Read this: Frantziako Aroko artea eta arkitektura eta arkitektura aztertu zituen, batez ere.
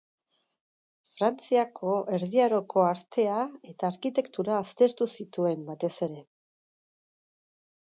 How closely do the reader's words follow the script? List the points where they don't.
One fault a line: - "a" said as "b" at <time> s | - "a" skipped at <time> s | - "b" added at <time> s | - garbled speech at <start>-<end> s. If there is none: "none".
- "Erdi" added at 2.2 s
- "eta arkitektura" skipped at 4.6 s